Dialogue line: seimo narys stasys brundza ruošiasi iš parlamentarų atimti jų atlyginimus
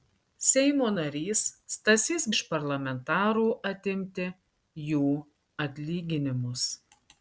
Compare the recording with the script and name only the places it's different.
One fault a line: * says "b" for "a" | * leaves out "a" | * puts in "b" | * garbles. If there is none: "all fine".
* leaves out "brundza ruošiasi"